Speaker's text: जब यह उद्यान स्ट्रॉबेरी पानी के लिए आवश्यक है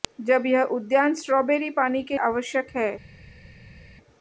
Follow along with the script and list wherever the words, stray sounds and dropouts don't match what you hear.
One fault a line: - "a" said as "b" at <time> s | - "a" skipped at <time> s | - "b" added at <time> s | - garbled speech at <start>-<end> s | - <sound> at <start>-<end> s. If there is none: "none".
- "लिए" skipped at 2.2 s